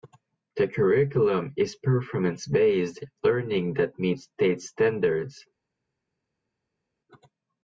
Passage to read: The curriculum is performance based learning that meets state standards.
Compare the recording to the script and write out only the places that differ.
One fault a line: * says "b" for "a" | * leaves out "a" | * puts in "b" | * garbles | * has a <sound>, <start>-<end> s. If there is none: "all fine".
all fine